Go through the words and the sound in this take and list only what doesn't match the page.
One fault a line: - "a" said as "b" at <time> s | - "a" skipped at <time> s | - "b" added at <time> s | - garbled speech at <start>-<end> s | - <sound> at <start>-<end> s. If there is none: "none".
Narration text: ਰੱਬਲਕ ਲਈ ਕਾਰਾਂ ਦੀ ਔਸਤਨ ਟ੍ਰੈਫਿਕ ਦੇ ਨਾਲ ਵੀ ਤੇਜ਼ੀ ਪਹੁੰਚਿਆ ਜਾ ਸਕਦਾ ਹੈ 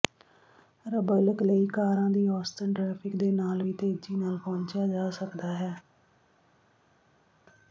- "ਨਾਲ" added at 4.2 s